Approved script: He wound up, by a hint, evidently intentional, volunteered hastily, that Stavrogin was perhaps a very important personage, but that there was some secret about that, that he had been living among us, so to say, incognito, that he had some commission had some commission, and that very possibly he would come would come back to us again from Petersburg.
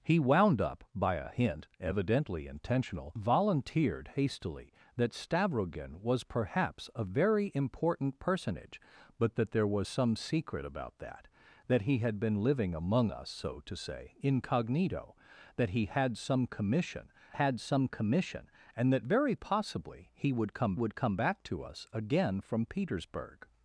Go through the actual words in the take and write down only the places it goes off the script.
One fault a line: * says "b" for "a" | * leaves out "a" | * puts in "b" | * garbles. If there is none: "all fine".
all fine